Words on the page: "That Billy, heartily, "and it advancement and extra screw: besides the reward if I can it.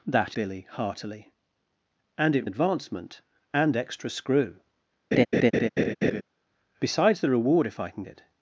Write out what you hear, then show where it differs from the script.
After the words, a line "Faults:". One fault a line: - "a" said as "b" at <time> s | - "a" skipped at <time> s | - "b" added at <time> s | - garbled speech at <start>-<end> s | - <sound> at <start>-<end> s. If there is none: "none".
"That Billy, heartily, "and it advancement and extra screw: besides the reward if I can it.
Faults:
- laugh at 5.1-6.2 s